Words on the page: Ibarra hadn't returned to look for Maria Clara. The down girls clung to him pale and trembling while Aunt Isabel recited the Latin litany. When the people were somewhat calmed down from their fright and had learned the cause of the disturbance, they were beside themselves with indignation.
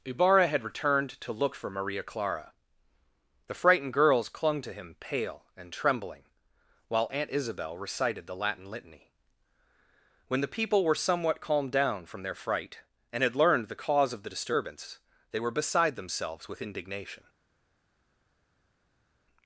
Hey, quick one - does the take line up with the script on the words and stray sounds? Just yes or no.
no